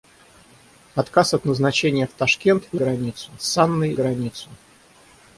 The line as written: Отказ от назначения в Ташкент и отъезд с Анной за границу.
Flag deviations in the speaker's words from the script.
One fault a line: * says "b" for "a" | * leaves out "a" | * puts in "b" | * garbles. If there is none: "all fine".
* says "границу" for "отъезд"
* leaves out "за"